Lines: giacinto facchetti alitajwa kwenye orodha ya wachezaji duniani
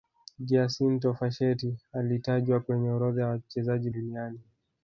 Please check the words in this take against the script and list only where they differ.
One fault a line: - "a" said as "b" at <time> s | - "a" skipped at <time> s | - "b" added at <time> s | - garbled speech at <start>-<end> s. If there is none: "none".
none